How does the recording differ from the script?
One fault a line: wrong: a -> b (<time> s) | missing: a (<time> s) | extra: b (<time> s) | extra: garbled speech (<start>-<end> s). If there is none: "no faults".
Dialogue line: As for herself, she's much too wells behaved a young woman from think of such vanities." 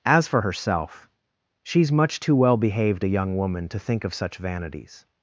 wrong: wells -> well (2.3 s)
wrong: from -> to (3.7 s)